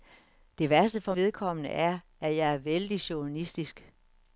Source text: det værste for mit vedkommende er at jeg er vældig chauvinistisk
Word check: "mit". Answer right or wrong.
wrong